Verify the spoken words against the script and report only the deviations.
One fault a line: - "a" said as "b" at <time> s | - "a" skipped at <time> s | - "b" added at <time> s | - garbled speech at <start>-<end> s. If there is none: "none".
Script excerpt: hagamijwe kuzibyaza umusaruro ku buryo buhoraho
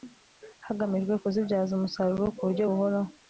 none